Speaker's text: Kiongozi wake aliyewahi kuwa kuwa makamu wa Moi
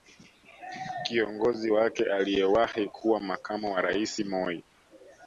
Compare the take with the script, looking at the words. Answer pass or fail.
fail